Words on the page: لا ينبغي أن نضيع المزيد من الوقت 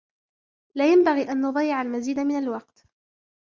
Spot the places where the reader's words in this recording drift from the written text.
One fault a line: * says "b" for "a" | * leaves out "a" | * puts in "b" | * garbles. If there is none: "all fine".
all fine